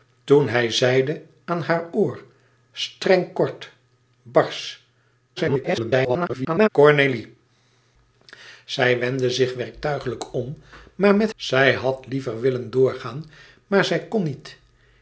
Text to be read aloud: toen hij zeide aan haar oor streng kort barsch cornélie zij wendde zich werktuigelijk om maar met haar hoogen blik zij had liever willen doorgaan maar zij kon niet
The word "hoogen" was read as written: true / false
false